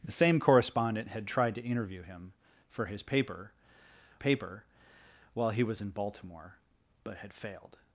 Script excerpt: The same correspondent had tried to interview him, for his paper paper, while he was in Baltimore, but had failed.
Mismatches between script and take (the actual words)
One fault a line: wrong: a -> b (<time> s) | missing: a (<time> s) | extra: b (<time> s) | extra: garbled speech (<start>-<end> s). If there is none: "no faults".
no faults